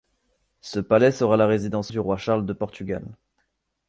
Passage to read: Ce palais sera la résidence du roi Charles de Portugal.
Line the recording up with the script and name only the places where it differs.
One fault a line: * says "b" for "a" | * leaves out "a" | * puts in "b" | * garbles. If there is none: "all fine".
all fine